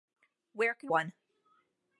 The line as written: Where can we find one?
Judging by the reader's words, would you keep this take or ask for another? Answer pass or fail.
fail